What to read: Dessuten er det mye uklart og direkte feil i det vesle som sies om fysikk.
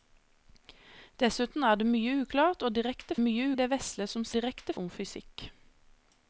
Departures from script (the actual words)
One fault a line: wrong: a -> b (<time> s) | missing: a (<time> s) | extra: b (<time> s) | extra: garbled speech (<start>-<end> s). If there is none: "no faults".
wrong: feil -> mye (3.2 s)
wrong: sies -> direkte (4.4 s)